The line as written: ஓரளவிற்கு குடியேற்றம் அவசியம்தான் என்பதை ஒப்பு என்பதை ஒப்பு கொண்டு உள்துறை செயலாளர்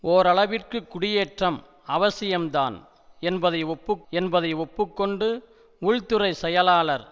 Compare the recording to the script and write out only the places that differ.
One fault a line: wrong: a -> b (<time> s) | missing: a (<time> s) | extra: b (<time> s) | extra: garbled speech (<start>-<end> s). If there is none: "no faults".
no faults